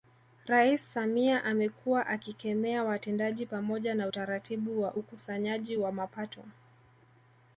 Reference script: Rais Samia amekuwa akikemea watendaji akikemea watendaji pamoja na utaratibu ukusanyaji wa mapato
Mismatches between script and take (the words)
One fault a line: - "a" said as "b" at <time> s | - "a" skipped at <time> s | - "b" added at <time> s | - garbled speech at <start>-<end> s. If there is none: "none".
- "akikemea watendaji" skipped at 3.5 s
- "wa" added at 4.8 s